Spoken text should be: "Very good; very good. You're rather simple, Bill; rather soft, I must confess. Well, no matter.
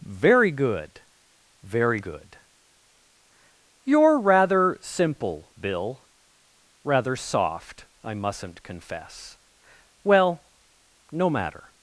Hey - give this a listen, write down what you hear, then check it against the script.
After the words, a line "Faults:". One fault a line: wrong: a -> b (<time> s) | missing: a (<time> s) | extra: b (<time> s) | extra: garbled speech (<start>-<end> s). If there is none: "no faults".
"Very good; very good. You're rather simple, Bill; rather soft, I mustn't confess. Well, no matter.
Faults:
wrong: must -> mustn't (8.1 s)